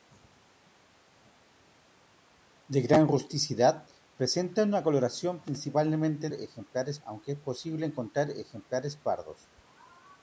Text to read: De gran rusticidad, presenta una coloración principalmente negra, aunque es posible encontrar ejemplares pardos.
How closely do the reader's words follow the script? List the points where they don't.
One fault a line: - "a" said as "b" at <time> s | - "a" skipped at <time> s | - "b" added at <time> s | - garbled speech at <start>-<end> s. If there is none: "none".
- "negra" said as "ejemplares" at 6.3 s